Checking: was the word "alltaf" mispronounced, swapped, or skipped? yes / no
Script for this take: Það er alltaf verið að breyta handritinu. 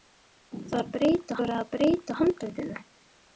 yes